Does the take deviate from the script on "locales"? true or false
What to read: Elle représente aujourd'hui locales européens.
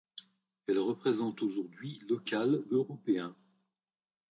false